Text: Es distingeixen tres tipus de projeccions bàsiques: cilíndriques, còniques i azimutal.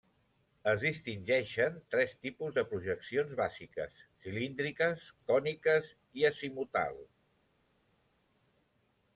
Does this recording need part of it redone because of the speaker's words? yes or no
no